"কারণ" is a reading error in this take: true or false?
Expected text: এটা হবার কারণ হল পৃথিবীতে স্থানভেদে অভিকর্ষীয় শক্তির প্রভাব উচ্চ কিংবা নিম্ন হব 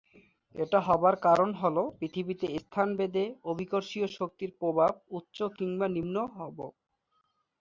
false